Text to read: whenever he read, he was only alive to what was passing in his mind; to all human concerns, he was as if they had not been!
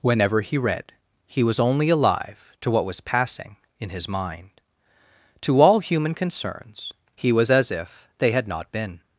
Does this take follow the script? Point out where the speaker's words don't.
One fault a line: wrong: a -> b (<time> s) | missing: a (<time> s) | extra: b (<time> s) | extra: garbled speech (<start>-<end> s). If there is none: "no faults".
no faults